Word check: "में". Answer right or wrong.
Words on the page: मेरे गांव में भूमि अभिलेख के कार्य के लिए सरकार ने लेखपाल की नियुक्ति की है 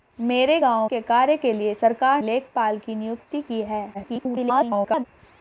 wrong